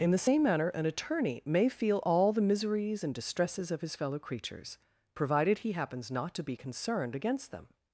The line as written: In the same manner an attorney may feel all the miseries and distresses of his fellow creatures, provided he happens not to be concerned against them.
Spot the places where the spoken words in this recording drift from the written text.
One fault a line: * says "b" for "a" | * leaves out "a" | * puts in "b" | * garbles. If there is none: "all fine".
all fine